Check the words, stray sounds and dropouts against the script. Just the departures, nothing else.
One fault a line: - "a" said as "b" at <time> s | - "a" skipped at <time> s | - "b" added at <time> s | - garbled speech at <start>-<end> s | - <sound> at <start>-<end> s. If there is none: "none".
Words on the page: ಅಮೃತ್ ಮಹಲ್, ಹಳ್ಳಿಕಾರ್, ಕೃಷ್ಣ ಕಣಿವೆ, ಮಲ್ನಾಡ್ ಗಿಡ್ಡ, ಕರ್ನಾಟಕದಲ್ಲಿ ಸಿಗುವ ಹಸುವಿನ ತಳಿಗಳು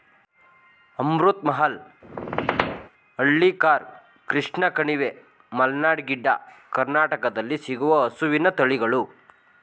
- squeak at 2.0-2.9 s